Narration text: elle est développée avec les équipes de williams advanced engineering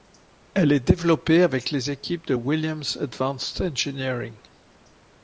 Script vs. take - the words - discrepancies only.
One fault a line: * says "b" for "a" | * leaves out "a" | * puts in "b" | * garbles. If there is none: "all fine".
all fine